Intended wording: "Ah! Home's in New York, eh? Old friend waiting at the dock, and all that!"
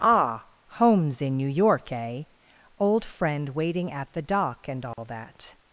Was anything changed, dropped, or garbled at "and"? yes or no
no